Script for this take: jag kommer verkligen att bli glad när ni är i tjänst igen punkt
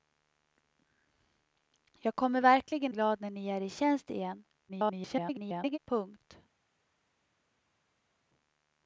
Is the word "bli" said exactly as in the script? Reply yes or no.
no